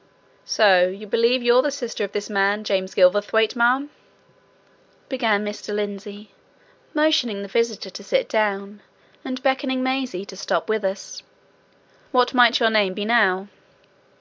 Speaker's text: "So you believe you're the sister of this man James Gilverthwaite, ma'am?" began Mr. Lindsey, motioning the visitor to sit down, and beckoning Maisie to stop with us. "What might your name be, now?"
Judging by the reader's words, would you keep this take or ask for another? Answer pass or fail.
pass